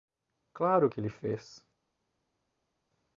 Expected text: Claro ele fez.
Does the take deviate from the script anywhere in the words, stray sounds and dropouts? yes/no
yes